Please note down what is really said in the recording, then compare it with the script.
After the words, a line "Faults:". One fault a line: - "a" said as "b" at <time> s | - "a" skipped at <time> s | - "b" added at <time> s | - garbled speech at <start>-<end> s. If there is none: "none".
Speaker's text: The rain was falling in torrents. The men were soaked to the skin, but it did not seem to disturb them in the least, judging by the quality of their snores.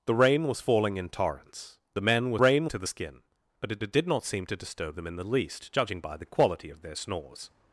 The rain was falling in torrents. The men were rain to the skin, but it it did not seem to disturb them in the least, judging by the quality of their snores.
Faults:
- "soaked" said as "rain" at 2.4 s
- "it" added at 3.8 s